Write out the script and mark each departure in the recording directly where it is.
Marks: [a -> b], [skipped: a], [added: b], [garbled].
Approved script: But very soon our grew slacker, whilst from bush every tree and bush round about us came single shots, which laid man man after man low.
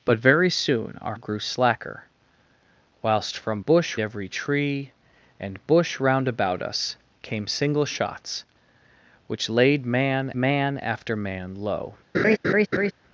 But very soon our grew slacker, whilst from bush every tree and bush round about us came single shots, which laid man man after man low.